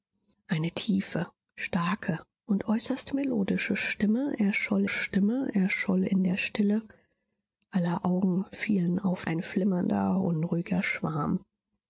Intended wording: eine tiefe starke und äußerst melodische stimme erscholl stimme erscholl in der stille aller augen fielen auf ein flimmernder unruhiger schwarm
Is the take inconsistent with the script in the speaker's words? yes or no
no